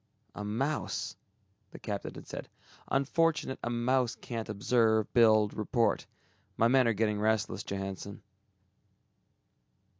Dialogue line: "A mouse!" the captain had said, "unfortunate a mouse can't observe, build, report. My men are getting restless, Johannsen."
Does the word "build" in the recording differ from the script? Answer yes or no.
no